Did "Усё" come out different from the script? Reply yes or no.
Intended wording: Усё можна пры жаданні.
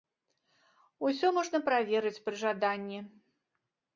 no